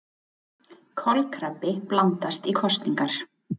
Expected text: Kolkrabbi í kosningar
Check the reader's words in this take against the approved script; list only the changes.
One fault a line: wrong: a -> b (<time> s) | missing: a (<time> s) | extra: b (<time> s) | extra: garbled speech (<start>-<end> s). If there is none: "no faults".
extra: blandast (1.9 s)